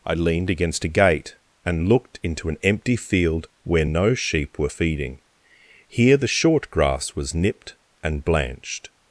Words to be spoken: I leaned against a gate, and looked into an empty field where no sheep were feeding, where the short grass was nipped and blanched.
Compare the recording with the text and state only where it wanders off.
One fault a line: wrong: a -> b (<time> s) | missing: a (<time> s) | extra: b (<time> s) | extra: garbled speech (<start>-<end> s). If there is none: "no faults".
wrong: where -> here (5.9 s)